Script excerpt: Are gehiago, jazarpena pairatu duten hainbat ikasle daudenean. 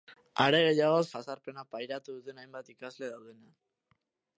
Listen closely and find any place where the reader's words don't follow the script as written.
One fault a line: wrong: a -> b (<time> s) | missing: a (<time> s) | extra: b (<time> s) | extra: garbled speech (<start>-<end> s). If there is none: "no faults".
no faults